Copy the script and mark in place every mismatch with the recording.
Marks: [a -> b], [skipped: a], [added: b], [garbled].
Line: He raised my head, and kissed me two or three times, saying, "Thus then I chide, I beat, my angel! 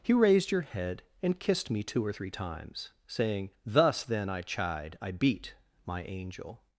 He raised [my -> your] head, and kissed me two or three times, saying, "Thus then I chide, I beat, my angel!